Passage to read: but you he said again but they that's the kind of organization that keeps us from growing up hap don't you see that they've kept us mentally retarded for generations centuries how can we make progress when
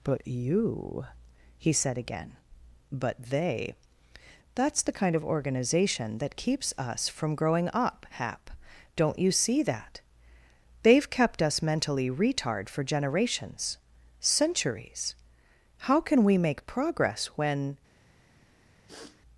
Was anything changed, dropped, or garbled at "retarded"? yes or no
yes